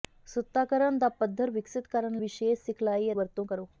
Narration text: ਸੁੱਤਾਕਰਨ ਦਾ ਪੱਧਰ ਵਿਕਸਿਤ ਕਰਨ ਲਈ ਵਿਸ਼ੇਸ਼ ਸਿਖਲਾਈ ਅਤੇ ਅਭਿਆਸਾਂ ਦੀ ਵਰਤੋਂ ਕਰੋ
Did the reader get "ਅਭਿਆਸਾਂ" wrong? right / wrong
wrong